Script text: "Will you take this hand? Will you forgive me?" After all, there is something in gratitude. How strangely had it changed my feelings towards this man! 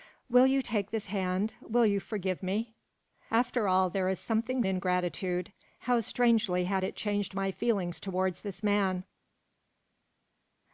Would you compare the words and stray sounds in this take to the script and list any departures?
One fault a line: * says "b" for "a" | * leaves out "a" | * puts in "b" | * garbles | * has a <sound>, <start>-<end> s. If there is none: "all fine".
all fine